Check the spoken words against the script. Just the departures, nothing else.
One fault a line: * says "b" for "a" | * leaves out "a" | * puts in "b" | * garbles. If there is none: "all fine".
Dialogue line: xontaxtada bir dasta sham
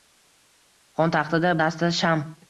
* leaves out "bir"